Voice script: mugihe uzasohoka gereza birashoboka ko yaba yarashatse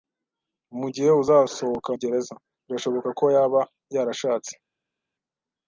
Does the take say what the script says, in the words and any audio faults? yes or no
yes